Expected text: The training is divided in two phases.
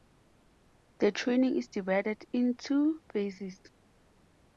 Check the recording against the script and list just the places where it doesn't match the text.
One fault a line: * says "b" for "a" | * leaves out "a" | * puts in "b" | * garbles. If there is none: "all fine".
all fine